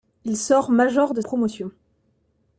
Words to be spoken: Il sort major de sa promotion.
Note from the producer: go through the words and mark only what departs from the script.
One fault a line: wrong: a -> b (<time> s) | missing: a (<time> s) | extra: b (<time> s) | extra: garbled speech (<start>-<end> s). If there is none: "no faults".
missing: sa (1.2 s)